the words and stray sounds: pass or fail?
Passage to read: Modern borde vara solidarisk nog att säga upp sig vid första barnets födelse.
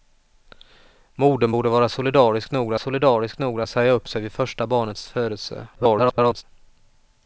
fail